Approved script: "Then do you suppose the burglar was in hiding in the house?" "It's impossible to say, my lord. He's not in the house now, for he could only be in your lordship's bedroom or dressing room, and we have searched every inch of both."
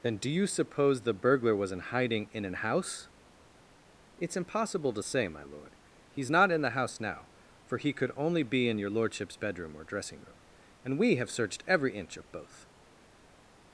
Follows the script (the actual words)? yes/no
no